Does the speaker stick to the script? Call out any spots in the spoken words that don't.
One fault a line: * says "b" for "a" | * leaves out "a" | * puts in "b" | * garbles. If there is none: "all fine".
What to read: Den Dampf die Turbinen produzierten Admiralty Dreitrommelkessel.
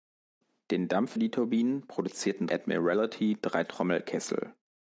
all fine